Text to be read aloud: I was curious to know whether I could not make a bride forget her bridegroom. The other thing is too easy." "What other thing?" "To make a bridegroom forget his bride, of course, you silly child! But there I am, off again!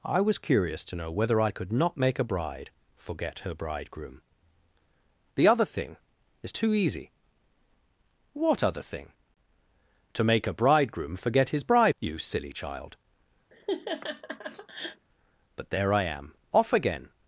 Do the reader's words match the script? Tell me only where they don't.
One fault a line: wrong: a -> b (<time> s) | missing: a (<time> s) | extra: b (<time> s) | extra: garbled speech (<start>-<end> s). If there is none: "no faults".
missing: of course (11.9 s)